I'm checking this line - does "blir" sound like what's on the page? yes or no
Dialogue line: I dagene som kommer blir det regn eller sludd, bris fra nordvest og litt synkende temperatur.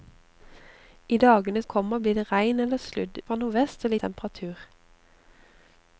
yes